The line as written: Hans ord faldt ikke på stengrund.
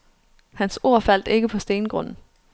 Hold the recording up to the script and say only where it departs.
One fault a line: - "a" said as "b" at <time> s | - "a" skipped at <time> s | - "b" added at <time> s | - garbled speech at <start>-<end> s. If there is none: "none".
none